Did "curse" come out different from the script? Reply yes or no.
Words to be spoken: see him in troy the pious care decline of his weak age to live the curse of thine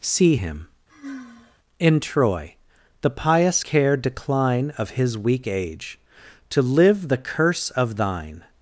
no